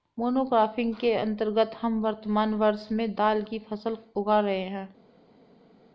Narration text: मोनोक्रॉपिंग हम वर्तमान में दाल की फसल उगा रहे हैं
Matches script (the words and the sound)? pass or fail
fail